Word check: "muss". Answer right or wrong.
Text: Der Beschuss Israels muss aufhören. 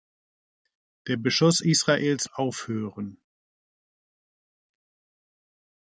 wrong